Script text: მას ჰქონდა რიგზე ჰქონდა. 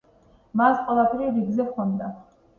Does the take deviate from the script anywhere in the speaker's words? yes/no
yes